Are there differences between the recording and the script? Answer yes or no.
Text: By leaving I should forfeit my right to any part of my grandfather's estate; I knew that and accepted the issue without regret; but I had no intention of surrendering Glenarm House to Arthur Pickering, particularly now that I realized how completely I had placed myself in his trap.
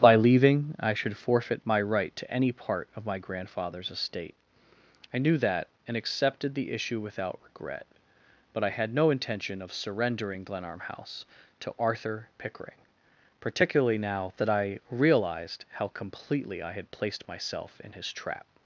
no